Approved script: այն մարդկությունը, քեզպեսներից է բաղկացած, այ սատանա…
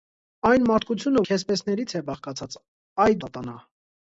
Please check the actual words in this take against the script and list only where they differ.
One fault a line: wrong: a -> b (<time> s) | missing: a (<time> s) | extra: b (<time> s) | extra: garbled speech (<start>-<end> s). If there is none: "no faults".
no faults